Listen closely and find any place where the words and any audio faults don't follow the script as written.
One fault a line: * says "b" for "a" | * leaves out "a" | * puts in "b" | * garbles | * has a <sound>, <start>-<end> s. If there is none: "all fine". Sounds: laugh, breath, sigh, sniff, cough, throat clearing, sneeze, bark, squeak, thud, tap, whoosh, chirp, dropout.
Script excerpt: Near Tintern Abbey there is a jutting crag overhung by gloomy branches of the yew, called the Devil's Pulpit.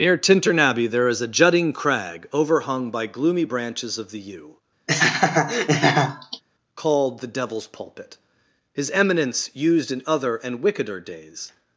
* has a laugh, 4.9-6.4 s
* puts in "His eminence used in other and wickeder days"